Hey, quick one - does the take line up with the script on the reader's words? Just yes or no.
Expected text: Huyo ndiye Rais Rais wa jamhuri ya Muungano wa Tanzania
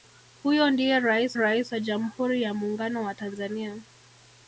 yes